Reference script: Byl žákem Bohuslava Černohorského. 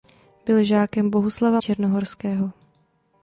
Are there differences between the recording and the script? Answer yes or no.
no